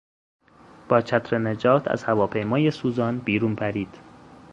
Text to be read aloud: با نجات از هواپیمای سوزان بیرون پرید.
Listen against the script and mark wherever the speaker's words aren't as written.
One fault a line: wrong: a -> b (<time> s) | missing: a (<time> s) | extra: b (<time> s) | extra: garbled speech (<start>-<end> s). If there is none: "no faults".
extra: چتر (1.0 s)